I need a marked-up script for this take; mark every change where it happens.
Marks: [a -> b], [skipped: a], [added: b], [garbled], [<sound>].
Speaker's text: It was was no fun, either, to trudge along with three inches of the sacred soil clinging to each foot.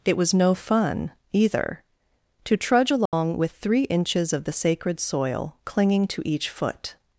It was [skipped: was] no fun, either, to trudge along [dropout] with three inches of the sacred soil clinging to each foot.